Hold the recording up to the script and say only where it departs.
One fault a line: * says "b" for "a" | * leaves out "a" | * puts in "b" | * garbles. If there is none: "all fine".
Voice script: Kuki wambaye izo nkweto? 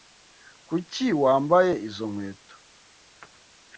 all fine